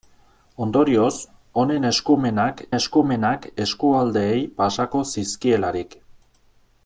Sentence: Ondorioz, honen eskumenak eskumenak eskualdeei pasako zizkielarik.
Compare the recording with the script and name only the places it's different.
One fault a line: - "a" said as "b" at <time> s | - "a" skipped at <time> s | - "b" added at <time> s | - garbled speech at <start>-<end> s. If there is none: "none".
none